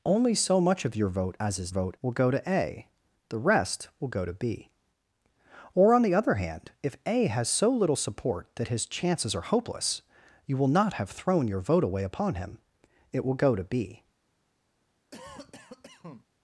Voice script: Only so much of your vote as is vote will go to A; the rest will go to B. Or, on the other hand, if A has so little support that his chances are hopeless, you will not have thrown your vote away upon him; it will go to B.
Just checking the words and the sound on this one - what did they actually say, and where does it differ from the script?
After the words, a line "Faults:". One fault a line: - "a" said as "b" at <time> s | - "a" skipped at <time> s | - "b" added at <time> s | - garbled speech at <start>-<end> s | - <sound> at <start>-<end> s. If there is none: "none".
Only so much of your vote as is vote will go to A; the rest will go to B. Or, on the other hand, if A has so little support that his chances are hopeless, you will not have thrown your vote away upon him; it will go to B.
Faults:
- cough at 15.1-16.3 s